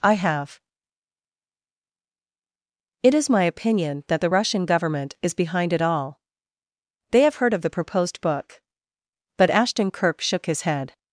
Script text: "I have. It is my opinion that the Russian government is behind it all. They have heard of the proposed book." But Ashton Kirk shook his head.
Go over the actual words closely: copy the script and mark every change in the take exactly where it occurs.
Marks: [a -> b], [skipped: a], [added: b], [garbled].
"I have. It is my opinion that the Russian government is behind it all. They have heard of the proposed book." But Ashton Kirk shook his head.